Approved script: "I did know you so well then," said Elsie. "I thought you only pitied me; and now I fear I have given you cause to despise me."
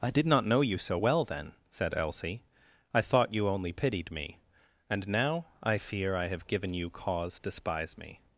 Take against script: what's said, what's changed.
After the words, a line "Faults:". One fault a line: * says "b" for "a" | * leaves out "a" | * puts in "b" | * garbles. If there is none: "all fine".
"I did not know you so well then," said Elsie. "I thought you only pitied me; and now I fear I have given you cause to despise me."
Faults:
* puts in "not"